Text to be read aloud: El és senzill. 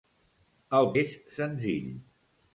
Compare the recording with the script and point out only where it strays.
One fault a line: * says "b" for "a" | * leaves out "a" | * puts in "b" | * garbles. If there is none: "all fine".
all fine